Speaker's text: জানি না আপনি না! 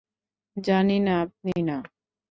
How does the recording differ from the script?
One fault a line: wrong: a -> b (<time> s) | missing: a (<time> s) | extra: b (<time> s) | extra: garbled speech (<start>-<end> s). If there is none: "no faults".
no faults